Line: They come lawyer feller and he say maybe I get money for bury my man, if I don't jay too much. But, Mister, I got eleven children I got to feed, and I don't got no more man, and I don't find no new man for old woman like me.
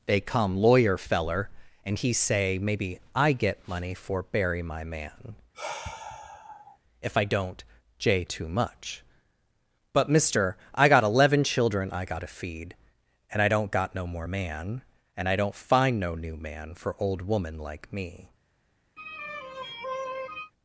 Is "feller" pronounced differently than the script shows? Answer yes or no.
no